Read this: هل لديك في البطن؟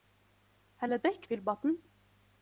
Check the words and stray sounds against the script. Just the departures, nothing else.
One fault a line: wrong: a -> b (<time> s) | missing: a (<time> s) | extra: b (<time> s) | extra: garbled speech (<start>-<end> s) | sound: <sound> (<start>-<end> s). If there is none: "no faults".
no faults